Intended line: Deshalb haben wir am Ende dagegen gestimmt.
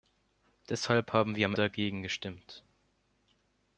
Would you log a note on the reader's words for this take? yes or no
yes